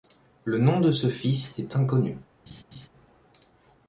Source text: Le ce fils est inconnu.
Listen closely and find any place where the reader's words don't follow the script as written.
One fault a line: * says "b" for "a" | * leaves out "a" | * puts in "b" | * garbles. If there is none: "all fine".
* puts in "nom de"